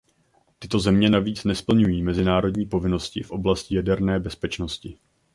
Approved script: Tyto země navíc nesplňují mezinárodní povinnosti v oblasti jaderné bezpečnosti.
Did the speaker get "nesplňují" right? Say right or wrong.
right